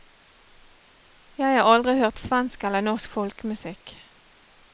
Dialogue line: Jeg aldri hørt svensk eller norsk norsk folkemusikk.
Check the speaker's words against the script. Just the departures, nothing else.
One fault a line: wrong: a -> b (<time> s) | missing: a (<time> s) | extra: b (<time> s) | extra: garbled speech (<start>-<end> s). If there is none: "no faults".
extra: har (1.6 s)
missing: norsk (3.1 s)